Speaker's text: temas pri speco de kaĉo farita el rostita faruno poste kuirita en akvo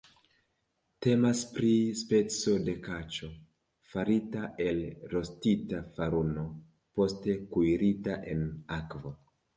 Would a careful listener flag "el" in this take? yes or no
no